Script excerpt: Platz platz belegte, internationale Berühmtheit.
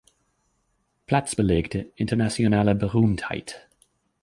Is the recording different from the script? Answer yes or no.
yes